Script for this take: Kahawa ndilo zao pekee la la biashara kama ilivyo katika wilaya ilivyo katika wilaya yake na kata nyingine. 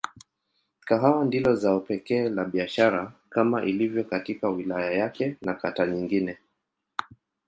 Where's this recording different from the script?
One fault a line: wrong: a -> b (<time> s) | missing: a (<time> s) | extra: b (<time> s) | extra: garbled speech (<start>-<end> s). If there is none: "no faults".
missing: la (2.5 s)
missing: ilivyo katika wilaya (4.9 s)